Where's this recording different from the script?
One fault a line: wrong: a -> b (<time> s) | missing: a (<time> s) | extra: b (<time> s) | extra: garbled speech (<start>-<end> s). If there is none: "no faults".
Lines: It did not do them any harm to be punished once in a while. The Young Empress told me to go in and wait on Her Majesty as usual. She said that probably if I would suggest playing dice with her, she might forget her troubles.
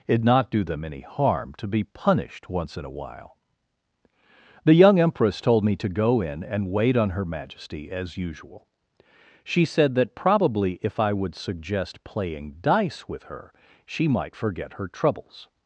missing: did (0.2 s)